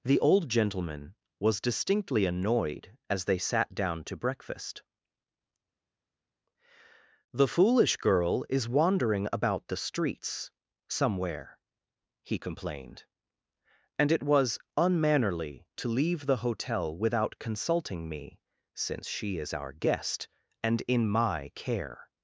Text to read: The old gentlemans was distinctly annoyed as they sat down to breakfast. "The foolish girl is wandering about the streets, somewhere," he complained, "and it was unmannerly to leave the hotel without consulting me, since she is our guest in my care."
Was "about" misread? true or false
false